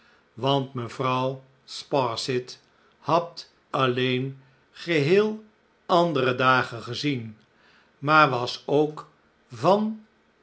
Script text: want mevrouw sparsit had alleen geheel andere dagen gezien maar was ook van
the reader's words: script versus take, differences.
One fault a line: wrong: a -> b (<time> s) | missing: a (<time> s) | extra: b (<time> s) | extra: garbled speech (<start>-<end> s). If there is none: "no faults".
no faults